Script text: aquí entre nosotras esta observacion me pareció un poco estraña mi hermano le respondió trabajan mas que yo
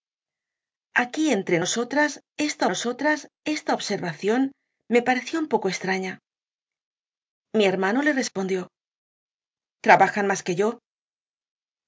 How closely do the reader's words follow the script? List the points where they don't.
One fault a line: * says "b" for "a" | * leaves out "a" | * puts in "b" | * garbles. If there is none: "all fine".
* puts in "nosotras esta"